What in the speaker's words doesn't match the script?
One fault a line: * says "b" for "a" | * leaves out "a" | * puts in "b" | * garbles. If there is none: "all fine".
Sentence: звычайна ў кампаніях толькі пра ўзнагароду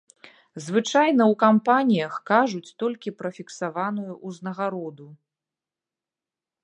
* puts in "кажуць"
* puts in "фіксаваную"